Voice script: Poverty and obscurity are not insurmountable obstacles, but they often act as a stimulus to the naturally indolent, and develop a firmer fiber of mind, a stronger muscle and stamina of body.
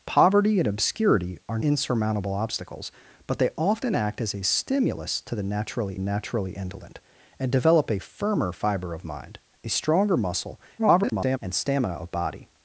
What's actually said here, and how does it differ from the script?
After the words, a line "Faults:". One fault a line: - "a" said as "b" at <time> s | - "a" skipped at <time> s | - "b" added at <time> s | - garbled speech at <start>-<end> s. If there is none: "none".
Poverty and obscurity are insurmountable obstacles, but they often act as a stimulus to the naturally naturally indolent, and develop a firmer fiber of mind, a stronger muscle [garbled] and stamina of body.
Faults:
- "not" skipped at 1.6 s
- "naturally" added at 6.0 s
- garbled speech at 10.8-11.4 s